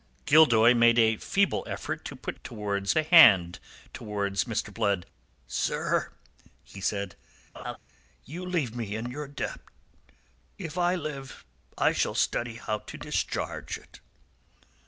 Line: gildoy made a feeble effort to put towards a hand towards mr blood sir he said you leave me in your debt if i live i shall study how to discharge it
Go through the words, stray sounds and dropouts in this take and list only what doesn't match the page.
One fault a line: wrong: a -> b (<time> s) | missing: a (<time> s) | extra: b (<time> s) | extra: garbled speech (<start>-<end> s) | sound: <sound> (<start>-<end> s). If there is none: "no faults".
sound: laugh (7.5-7.8 s)